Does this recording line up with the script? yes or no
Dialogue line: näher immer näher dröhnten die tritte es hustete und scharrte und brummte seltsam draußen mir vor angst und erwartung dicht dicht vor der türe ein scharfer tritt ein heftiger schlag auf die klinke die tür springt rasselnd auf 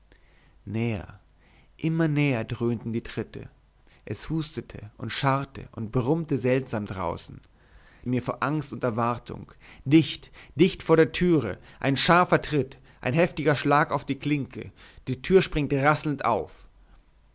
yes